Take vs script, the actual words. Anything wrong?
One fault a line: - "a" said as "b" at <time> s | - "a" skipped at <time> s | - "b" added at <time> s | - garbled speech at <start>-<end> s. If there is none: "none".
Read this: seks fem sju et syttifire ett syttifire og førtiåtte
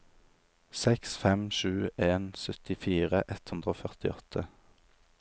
- "et" said as "en" at 2.1 s
- "syttifire" said as "hundre" at 3.5 s